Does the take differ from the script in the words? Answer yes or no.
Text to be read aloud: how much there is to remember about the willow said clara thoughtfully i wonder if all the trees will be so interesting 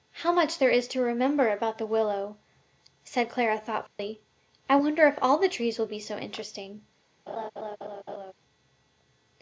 no